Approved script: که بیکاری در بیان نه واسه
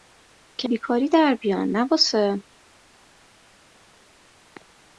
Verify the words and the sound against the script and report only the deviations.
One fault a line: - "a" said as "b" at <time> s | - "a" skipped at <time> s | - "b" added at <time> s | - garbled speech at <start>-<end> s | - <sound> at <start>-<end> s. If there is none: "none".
none